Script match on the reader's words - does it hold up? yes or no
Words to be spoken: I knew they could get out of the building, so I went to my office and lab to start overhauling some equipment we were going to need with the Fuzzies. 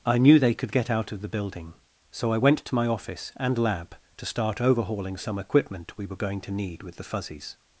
yes